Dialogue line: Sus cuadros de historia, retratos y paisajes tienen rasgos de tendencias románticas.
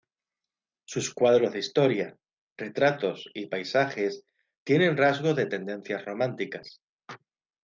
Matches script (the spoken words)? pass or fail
pass